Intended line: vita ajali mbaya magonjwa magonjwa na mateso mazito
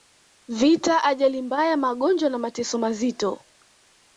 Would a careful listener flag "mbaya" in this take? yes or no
no